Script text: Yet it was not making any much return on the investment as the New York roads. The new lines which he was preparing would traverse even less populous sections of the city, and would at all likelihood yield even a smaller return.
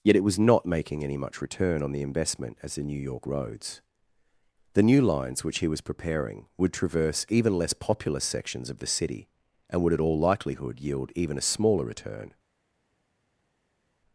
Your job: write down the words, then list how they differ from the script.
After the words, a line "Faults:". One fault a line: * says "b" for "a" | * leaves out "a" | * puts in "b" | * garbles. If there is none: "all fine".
Yet it was not making any much return on the investment as the New York roads. The new lines which he was preparing would traverse even less populous sections of the city, and would at all likelihood yield even a smaller return.
Faults:
all fine